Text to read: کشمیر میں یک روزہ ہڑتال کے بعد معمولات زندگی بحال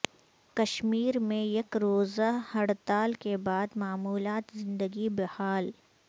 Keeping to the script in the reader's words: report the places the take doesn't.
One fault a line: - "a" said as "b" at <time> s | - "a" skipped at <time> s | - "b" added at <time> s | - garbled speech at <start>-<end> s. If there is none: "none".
none